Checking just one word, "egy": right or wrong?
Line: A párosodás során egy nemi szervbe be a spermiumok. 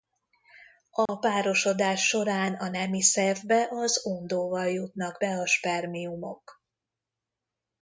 wrong